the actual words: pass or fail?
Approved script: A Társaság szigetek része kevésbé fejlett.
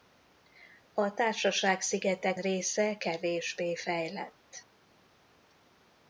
pass